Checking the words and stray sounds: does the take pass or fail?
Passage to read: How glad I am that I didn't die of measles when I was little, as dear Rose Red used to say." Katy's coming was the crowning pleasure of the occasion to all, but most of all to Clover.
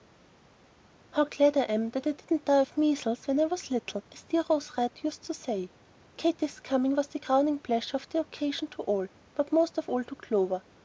pass